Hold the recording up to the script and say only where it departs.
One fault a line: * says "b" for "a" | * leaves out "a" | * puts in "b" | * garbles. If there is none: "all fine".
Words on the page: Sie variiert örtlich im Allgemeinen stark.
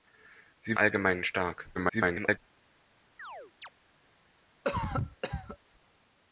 * leaves out "variiert örtlich im"
* garbles